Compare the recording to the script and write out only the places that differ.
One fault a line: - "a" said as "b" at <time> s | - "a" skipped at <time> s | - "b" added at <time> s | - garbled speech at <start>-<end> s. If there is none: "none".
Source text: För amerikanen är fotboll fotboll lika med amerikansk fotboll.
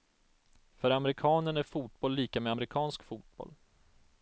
- "fotboll" skipped at 2.1 s